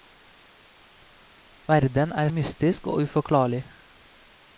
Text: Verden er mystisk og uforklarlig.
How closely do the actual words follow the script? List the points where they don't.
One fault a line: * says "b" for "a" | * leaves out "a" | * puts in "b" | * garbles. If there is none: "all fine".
all fine